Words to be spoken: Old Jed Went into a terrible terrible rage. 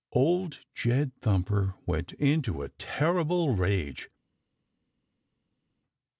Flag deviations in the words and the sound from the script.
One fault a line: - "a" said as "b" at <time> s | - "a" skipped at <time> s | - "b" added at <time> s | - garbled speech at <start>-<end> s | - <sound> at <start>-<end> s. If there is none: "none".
- "Thumper" added at 1.2 s
- "terrible" skipped at 3.5 s